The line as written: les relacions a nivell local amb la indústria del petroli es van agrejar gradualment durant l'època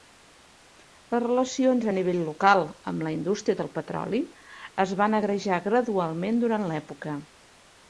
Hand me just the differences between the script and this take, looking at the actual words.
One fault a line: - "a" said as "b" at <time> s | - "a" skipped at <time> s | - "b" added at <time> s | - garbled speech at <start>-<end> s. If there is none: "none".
none